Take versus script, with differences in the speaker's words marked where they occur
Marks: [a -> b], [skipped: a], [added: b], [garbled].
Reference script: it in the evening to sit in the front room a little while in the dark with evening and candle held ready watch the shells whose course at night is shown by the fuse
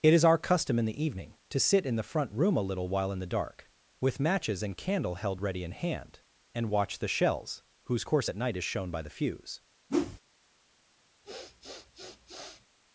it [added: is our custom] in the evening to sit in the front room a little while in the dark with [evening -> matches] and candle held ready [added: in hand and] watch the shells whose course at night is shown by the fuse